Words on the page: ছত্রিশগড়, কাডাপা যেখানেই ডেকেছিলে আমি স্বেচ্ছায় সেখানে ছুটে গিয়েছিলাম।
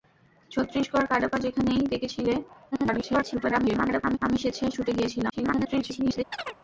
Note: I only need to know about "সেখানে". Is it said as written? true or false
false